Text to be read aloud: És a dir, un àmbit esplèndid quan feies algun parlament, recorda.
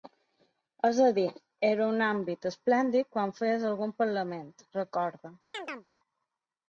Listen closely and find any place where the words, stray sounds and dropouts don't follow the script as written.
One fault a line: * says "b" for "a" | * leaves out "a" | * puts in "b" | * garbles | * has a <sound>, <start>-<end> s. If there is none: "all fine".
* puts in "era"
* has a chirp, 5.5-5.9 s